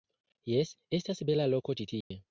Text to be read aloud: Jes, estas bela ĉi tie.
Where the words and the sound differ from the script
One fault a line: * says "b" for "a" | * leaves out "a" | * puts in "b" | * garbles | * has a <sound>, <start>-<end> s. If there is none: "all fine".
* puts in "loko"
* has a dropout, 2.0-2.1 s